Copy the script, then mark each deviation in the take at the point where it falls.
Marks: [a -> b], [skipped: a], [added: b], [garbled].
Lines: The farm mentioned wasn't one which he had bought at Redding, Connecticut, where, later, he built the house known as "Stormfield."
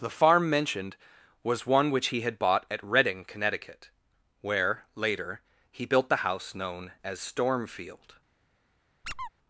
The farm mentioned [wasn't -> was] one which he had bought at Redding, Connecticut, where, later, he built the house known as "Stormfield."